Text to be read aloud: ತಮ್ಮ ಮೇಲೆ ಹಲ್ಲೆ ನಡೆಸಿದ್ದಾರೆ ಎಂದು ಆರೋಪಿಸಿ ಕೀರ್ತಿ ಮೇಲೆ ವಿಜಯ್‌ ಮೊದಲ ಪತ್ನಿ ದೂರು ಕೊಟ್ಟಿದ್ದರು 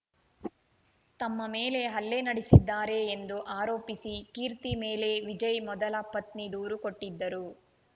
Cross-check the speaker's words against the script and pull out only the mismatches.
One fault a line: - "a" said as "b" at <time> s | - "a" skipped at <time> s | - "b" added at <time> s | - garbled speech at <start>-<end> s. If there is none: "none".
none